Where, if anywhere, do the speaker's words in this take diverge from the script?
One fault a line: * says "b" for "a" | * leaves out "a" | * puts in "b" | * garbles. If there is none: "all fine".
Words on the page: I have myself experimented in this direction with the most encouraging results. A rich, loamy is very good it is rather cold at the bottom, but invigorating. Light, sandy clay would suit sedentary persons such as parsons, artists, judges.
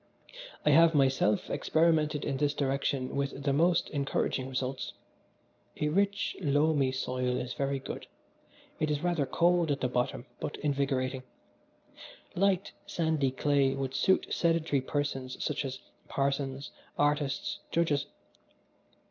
* puts in "soil"